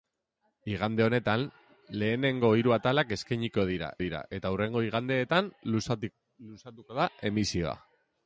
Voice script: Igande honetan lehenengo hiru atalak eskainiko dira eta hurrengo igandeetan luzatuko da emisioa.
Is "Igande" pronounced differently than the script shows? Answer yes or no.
no